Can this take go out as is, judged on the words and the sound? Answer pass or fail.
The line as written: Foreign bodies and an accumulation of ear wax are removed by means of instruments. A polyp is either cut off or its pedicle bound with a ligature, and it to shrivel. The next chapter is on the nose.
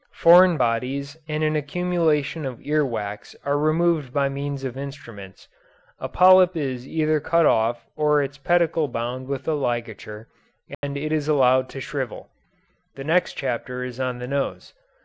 fail